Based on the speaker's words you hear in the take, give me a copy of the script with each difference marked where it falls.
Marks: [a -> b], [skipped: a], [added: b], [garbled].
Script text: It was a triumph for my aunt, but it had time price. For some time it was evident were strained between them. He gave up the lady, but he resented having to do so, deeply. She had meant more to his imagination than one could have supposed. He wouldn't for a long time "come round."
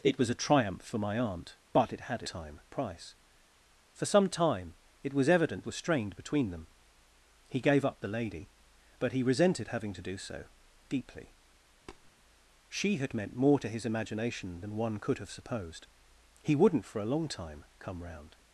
It was a triumph for my aunt, but it had time price. For some time it was evident were strained between them. He gave up the lady, but he resented having to do so, deeply. She had meant more to his imagination than one could have supposed. He wouldn't for a long time "come round."